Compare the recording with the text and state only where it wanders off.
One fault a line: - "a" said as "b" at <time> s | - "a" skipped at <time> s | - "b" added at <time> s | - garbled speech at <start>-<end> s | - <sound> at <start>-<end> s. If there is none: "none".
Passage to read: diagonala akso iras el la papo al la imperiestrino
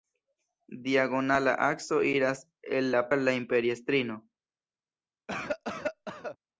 - "papo" skipped at 3.1 s
- cough at 5.3-6.4 s